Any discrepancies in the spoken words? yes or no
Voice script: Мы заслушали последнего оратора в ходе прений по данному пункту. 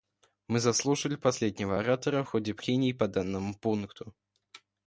no